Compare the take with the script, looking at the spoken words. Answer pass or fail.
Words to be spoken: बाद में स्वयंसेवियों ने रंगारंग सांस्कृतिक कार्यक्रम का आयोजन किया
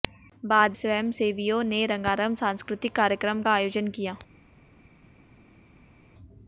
fail